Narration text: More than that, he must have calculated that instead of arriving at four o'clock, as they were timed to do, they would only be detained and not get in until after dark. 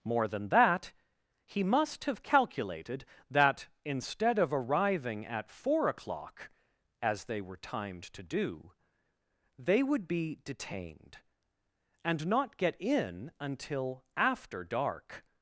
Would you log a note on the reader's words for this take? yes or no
yes